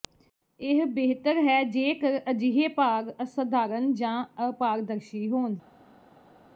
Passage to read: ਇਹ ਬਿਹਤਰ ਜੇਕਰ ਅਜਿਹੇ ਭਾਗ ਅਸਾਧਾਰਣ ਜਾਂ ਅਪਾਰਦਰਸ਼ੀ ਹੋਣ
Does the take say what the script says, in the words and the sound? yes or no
no